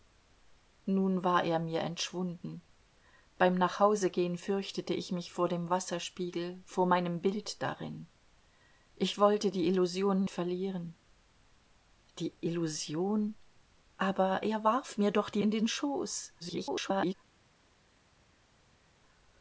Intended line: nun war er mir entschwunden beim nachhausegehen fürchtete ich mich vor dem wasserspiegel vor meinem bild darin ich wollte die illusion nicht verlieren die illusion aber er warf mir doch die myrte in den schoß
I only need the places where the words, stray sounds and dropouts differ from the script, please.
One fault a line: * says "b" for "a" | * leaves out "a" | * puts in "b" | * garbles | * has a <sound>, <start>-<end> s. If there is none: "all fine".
* leaves out "nicht"
* leaves out "myrte"
* garbles